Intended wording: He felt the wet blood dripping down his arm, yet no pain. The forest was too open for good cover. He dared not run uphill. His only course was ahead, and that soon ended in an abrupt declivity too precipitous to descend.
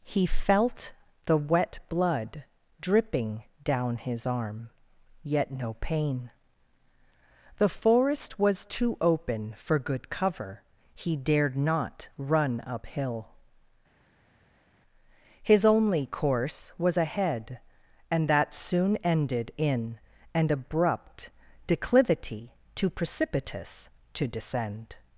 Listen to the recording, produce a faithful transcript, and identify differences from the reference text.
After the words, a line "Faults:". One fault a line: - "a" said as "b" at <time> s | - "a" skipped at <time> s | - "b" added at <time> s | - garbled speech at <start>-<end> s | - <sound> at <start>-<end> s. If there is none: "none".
He felt the wet blood dripping down his arm, yet no pain. The forest was too open for good cover. He dared not run uphill. His only course was ahead, and that soon ended in an abrupt declivity too precipitous to descend.
Faults:
none